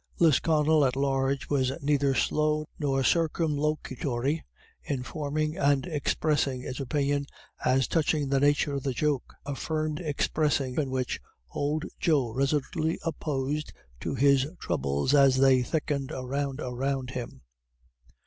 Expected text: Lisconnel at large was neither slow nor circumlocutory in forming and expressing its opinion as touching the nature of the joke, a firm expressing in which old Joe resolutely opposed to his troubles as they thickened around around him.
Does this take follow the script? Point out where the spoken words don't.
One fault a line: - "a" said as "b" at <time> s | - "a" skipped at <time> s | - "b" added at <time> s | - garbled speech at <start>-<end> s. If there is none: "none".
none